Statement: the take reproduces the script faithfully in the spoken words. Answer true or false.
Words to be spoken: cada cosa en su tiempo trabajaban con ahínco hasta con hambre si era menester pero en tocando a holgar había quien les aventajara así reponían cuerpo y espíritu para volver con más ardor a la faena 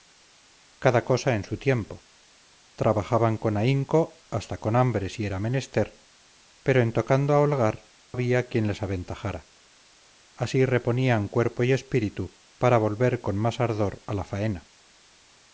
true